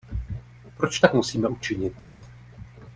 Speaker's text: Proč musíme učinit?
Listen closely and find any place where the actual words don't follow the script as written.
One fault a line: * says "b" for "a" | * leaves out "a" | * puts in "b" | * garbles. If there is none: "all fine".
* puts in "tak"